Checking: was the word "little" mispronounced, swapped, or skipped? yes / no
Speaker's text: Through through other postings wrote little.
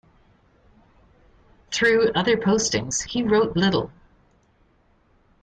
no